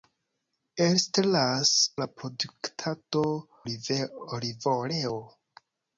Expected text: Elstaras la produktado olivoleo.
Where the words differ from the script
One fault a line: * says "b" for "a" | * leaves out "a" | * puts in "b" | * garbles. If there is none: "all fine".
all fine